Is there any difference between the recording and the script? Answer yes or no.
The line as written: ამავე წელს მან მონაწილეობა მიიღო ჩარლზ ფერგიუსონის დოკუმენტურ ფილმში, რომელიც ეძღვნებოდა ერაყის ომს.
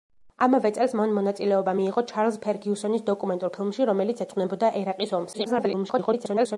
yes